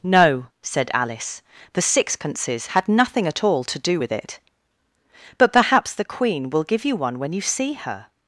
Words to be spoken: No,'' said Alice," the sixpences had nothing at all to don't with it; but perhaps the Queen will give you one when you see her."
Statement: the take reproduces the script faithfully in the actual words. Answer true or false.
false